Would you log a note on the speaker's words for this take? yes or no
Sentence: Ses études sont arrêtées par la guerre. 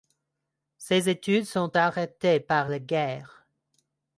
no